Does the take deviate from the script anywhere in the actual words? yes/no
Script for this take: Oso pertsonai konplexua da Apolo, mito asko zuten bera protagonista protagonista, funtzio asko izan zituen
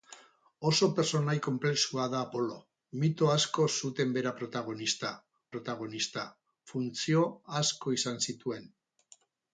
no